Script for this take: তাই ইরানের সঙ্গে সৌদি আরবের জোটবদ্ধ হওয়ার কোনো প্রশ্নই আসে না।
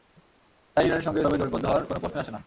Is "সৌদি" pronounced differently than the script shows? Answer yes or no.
yes